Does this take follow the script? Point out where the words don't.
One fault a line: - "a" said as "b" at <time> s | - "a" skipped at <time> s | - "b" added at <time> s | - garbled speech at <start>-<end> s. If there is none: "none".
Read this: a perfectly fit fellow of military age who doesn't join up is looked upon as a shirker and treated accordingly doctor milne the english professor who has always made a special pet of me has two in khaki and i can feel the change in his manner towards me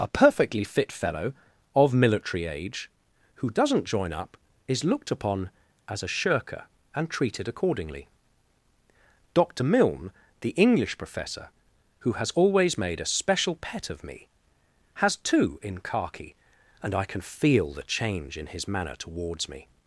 none